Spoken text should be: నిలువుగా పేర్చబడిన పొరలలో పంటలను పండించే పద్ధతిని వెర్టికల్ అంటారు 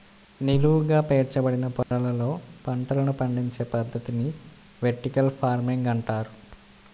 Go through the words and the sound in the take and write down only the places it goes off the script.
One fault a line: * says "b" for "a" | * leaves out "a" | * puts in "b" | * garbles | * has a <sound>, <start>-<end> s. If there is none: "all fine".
* has a dropout, 1.8-1.9 s
* puts in "ఫార్మింగ్"